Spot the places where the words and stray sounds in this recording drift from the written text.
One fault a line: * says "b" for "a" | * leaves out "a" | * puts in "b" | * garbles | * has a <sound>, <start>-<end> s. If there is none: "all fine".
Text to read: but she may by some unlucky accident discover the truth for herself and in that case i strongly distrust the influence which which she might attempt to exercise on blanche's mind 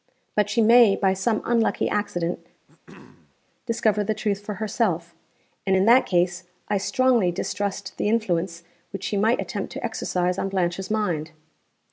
* has a throat clearing, 2.7-3.4 s
* leaves out "which"